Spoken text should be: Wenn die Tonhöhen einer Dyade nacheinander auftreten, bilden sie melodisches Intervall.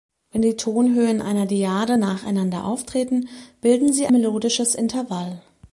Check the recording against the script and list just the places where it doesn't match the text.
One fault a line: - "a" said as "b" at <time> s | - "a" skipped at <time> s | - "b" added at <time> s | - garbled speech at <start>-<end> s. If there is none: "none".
none